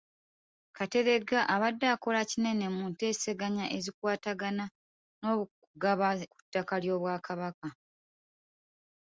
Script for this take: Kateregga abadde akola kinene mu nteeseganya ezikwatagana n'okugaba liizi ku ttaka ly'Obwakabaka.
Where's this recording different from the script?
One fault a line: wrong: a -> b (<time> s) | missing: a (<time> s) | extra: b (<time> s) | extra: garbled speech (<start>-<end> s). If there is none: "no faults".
missing: liizi (6.1 s)